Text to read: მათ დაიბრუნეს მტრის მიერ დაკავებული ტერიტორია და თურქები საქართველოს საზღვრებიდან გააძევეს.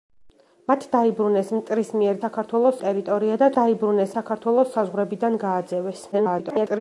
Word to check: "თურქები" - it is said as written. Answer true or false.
false